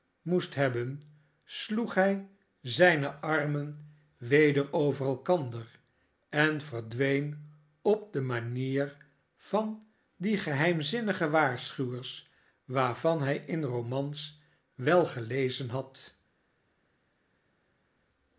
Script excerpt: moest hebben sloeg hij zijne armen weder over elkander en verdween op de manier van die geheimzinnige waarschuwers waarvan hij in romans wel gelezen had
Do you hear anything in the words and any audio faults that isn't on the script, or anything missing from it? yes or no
no